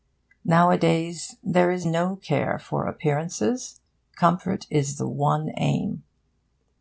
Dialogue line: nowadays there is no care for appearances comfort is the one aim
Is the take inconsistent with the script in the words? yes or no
no